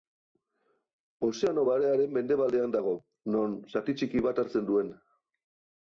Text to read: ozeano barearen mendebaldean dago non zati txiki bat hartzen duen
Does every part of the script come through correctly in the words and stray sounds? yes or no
yes